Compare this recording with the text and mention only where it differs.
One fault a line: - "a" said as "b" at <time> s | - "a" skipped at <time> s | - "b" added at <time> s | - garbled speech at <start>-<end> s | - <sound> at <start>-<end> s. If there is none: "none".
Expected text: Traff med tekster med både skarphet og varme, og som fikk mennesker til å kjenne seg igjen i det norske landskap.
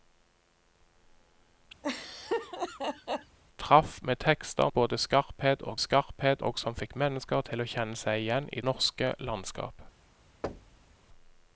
- laugh at 1.8-3.4 s
- "med" skipped at 4.7 s
- "varme" said as "skarphet" at 5.8 s
- "det" skipped at 8.6 s
- thud at 10.4-10.9 s